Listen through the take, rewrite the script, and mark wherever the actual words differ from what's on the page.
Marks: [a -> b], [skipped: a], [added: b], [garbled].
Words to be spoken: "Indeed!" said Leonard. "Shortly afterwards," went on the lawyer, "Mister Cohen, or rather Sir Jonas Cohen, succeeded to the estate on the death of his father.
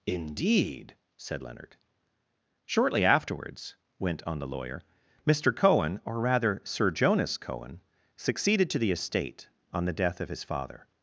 "Indeed!" said Leonard. "Shortly afterwards," went on the lawyer, "Mister Cohen, or rather Sir Jonas Cohen, succeeded to the estate on the death of his father.